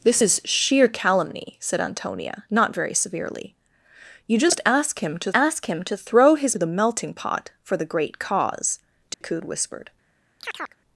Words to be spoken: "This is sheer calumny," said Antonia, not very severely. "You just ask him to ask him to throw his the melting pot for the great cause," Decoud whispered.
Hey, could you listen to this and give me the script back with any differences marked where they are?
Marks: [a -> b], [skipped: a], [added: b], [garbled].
"This is sheer calumny," said Antonia, not very severely. "You just ask him to ask him to throw his the melting pot for the great cause," Decoud whispered.